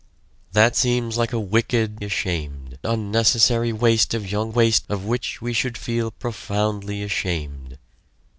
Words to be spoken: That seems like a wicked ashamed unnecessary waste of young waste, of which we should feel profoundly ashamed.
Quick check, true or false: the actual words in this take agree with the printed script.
true